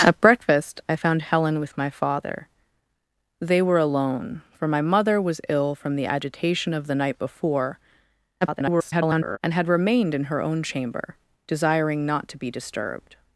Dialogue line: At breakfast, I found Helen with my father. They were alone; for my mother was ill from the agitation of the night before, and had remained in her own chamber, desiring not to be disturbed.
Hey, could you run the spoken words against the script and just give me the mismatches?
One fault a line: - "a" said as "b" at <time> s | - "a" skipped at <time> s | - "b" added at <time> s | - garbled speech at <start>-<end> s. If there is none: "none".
- garbled speech at 8.4-9.4 s